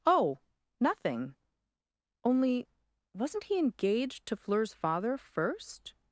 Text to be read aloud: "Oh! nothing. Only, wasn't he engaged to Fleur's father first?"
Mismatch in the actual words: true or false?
false